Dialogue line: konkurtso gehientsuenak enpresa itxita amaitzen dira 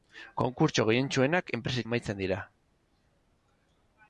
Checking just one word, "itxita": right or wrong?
wrong